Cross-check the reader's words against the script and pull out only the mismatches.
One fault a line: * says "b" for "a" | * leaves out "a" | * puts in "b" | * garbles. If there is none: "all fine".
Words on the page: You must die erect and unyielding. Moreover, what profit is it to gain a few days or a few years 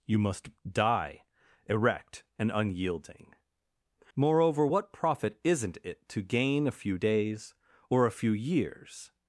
* says "isn't" for "is"